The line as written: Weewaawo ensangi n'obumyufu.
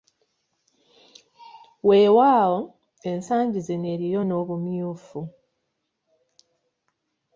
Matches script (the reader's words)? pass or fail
fail